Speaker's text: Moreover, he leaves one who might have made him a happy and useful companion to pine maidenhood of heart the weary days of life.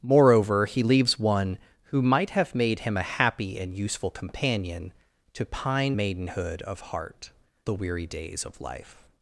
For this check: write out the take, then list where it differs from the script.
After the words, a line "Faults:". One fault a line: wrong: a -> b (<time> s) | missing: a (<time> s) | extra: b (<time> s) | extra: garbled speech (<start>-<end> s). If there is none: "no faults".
Moreover, he leaves one who might have made him a happy and useful companion to pine maidenhood of heart the weary days of life.
Faults:
no faults